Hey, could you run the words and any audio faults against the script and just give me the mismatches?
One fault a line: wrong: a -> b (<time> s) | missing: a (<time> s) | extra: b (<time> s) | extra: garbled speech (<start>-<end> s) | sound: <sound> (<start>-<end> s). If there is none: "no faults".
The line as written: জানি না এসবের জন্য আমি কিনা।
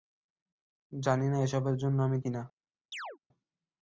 sound: chirp (2.9-3.2 s)